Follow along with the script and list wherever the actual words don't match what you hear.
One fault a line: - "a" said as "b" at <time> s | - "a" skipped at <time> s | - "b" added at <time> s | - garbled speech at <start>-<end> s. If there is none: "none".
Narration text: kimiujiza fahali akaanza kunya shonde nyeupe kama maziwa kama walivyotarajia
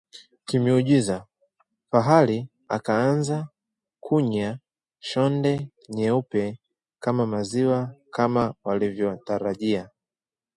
none